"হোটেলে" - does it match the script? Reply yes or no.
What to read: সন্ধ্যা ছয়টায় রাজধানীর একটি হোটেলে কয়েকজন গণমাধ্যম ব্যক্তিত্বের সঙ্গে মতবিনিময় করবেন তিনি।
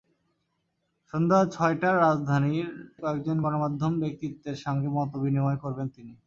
no